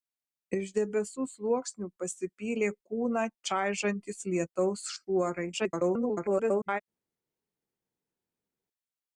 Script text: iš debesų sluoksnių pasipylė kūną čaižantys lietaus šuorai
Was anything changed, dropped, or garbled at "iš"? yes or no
no